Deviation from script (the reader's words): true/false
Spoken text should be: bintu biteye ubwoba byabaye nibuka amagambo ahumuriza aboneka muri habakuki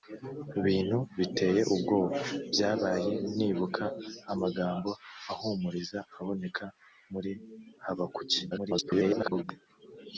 true